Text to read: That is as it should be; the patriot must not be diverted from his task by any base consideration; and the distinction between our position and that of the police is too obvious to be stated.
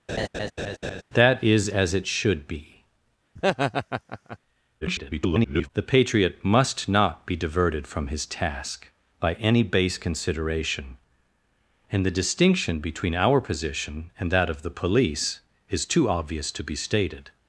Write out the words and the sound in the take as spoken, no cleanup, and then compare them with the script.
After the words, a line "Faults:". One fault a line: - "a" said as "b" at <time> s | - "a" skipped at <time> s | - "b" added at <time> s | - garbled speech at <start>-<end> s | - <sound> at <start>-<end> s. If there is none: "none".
That is as it should be; [garbled] the patriot must not be diverted from his task by any base consideration; and the distinction between our position and that of the police is too obvious to be stated.
Faults:
- laugh at 0.1-1.0 s
- laugh at 3.4-4.4 s
- garbled speech at 4.8-5.7 s